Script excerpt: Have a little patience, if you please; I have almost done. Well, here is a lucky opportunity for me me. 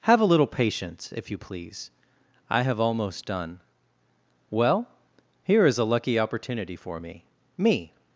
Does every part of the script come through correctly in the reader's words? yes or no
yes